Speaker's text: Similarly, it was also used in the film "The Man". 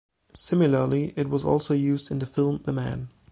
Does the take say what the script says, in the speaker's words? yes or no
yes